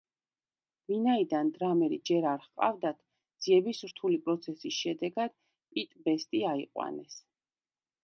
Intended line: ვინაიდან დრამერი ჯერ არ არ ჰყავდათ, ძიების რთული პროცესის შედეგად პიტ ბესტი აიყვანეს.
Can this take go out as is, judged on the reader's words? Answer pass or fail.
fail